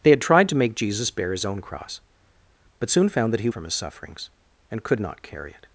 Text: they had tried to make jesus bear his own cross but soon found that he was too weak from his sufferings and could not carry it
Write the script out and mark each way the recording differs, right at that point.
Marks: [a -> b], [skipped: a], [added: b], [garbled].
they had tried to make jesus bear his own cross but soon found that he [skipped: was too weak] from his sufferings and could not carry it